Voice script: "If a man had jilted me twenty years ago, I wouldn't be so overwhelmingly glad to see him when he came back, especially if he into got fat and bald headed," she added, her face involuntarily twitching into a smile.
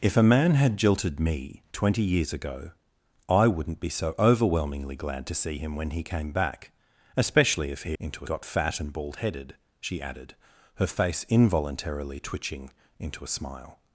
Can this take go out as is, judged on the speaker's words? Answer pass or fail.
pass